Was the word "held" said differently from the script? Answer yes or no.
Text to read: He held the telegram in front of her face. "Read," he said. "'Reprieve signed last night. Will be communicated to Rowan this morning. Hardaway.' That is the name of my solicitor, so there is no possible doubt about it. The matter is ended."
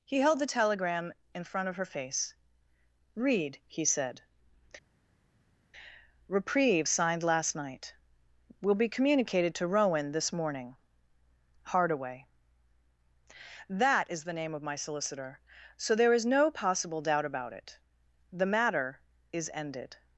no